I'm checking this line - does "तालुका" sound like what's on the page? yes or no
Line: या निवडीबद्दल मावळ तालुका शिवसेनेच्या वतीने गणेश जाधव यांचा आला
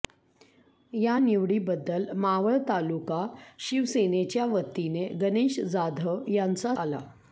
yes